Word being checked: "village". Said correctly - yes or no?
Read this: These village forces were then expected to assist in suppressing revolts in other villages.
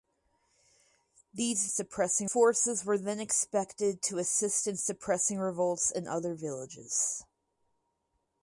no